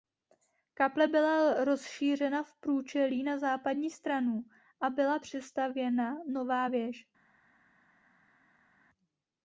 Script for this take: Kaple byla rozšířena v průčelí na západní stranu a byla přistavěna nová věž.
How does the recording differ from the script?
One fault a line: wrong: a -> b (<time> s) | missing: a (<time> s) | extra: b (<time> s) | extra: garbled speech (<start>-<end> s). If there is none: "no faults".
no faults